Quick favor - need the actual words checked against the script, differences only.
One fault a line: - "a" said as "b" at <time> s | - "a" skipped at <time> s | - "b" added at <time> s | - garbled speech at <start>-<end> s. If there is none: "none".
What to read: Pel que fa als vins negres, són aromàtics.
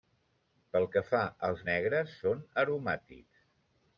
- "vins" skipped at 1.7 s